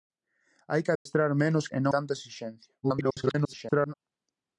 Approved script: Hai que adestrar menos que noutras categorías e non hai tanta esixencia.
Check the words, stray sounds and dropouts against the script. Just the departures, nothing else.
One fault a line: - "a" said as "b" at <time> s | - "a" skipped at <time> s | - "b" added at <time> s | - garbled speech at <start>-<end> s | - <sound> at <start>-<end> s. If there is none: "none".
- dropout at 1.0-1.1 s
- "que noutras categorías" skipped at 1.7 s
- "hai" skipped at 1.9 s
- garbled speech at 2.8-3.9 s